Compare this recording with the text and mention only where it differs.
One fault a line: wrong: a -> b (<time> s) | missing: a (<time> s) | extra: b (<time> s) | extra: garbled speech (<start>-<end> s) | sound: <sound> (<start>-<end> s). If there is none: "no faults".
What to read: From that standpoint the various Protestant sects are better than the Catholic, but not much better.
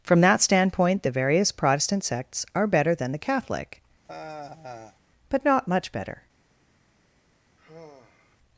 sound: sigh (4.0-5.0 s)
sound: sigh (7.6-8.4 s)